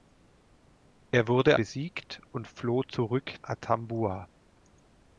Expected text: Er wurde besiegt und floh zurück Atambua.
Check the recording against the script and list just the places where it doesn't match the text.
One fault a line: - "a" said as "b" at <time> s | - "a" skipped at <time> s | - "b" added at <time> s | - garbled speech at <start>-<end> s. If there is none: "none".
none